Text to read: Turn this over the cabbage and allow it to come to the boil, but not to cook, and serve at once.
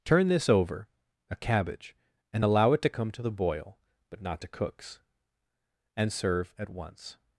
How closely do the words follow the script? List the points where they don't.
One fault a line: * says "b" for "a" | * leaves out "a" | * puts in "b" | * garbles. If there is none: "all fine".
* says "a" for "the"
* says "cooks" for "cook"